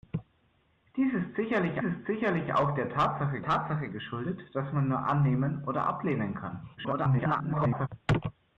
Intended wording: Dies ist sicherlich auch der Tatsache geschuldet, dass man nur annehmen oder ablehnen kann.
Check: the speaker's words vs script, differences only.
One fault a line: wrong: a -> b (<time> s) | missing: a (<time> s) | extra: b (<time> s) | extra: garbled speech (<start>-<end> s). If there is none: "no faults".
extra: ist sicherlich (1.8 s)
extra: Tatsache (3.4 s)
extra: garbled speech (6.8-7.9 s)